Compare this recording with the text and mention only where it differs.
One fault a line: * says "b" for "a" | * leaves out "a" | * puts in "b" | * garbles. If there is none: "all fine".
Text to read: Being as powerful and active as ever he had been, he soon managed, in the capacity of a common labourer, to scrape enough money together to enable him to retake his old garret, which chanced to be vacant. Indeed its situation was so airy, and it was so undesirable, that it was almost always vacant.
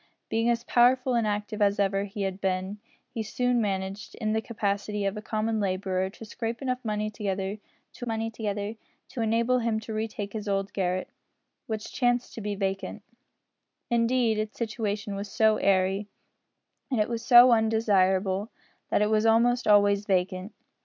* puts in "money together to"